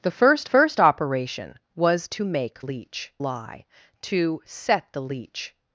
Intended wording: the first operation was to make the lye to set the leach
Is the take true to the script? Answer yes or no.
no